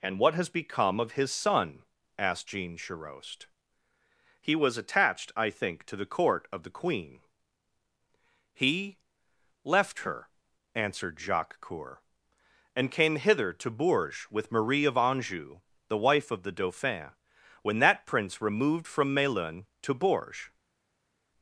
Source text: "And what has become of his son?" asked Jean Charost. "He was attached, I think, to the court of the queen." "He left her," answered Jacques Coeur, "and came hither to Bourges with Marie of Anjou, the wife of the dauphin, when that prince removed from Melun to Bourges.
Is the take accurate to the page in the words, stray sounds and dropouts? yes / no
yes